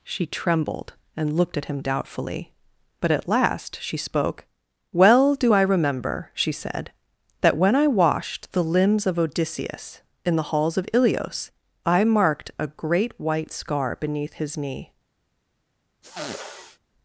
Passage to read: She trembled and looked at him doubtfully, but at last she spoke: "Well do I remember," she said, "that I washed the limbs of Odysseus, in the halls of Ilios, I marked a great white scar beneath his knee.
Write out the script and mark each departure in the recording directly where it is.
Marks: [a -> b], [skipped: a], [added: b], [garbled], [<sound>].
She trembled and looked at him doubtfully, but at last she spoke: "Well do I remember," she said, "that [added: when] I washed the limbs of Odysseus, in the halls of Ilios, I marked a great white scar beneath his knee. [sniff]